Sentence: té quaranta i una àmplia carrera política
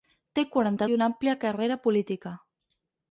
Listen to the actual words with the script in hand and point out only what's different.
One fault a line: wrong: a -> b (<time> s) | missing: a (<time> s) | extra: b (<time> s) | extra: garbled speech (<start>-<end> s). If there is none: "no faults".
no faults